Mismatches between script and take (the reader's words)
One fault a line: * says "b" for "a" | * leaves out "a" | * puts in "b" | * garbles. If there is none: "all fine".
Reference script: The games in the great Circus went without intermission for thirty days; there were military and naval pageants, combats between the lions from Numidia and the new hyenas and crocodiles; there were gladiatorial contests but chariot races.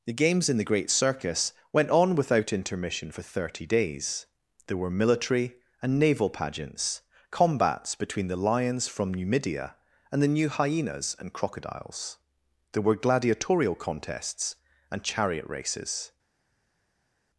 * puts in "on"
* says "and" for "but"